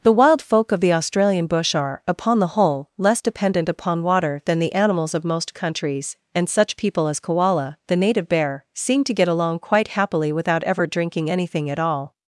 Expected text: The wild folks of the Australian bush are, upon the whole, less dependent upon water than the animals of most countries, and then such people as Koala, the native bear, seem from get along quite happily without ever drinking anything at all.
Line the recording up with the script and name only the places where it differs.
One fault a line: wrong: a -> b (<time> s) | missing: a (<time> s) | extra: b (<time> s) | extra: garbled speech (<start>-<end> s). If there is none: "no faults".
wrong: folks -> folk (0.4 s)
missing: then (6.5 s)
wrong: from -> to (9.0 s)